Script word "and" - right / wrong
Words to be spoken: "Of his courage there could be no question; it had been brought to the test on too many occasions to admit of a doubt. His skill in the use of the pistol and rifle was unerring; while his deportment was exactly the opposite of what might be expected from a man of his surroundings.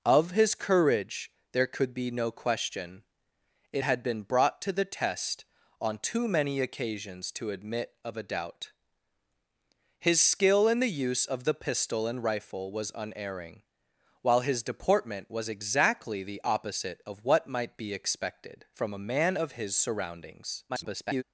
right